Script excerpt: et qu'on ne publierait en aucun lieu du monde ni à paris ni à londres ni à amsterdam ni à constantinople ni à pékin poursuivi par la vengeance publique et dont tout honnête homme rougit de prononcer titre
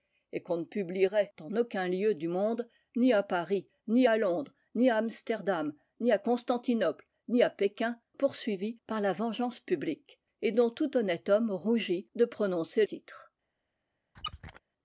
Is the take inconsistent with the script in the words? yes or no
no